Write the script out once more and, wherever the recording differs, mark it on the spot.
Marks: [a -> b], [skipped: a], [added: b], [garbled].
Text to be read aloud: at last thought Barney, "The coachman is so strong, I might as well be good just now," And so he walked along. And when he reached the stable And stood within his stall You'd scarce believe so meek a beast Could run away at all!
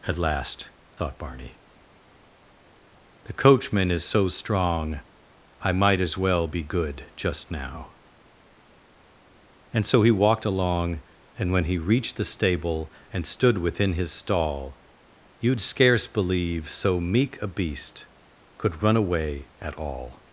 at last thought Barney, "The coachman is so strong, I might as well be good just now," And so he walked along. And when he reached the stable And stood within his stall You'd scarce believe so meek a beast Could run away at all!